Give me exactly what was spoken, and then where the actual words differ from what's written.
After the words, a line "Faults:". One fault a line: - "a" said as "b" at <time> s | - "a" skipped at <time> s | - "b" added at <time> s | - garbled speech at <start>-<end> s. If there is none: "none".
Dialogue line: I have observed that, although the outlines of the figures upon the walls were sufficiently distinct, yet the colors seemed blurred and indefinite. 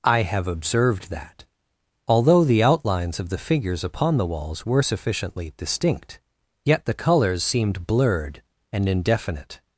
I have observed that, although the outlines of the figures upon the walls were sufficiently distinct, yet the colors seemed blurred and indefinite.
Faults:
none